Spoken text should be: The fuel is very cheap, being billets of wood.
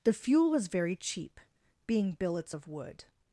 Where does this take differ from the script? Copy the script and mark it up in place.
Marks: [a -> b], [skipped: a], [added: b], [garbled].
The fuel [is -> was] very cheap, being billets of wood.